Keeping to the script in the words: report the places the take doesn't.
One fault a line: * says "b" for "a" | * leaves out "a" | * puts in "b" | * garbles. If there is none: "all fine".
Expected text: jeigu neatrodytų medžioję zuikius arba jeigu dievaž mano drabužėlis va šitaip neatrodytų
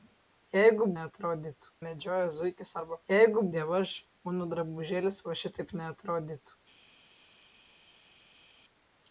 all fine